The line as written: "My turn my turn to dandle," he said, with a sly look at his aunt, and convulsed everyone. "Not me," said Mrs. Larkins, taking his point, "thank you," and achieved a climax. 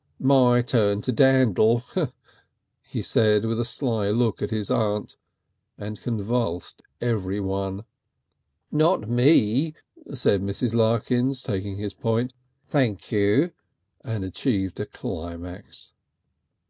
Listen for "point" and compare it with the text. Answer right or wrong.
right